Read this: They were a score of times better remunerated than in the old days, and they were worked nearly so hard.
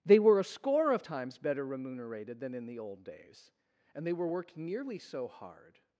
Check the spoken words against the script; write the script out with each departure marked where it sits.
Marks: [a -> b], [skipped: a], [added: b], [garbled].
They were a score of times better remunerated than in the old days, and they were worked nearly so hard.